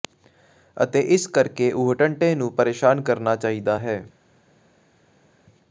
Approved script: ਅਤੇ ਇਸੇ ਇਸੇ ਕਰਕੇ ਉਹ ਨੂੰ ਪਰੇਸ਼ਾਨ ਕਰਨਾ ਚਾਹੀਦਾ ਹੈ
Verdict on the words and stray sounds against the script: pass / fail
fail